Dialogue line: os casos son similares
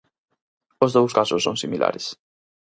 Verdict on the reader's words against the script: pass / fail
fail